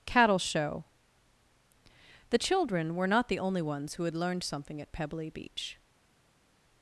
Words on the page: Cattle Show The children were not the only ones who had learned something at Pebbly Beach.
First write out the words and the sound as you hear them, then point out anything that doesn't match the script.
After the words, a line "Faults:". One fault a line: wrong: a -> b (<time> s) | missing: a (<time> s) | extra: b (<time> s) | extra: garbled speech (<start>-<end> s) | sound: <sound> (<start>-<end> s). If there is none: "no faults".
Cattle Show The children were not the only ones who had learned something at Pebbly Beach.
Faults:
no faults